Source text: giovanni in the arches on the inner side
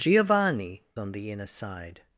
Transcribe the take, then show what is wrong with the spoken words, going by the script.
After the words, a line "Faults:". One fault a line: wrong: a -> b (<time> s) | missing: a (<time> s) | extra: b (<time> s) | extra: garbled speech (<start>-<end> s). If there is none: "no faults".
giovanni on the inner side
Faults:
missing: in the arches (0.8 s)